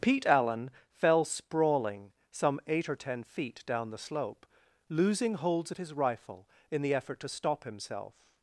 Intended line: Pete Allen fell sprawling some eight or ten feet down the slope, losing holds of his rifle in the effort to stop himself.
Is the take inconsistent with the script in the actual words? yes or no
no